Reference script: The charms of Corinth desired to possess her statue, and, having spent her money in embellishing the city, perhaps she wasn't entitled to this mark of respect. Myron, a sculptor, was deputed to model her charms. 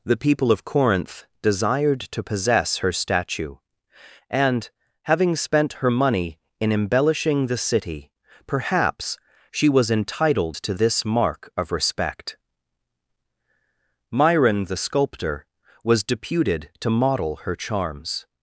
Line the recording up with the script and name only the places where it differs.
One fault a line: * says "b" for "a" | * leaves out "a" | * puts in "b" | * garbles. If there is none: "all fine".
* says "people" for "charms"
* says "was" for "wasn't"
* says "the" for "a"